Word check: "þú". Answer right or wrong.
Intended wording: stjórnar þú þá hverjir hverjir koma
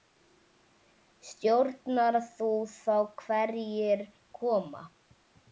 right